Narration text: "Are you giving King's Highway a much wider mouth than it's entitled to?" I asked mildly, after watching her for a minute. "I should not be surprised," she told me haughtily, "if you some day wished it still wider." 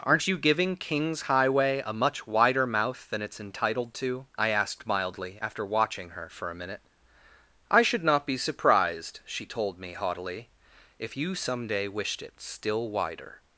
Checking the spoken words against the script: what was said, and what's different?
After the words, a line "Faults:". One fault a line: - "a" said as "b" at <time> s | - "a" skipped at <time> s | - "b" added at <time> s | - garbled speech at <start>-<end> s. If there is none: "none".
"Aren't you giving King's Highway a much wider mouth than it's entitled to?" I asked mildly, after watching her for a minute. "I should not be surprised," she told me haughtily, "if you some day wished it still wider."
Faults:
- "Are" said as "Aren't" at 0.0 s